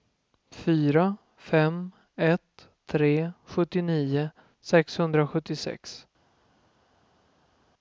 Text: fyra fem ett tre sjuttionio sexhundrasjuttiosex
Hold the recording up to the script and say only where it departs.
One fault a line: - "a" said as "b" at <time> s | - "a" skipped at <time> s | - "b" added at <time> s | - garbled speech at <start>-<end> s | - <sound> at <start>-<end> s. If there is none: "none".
none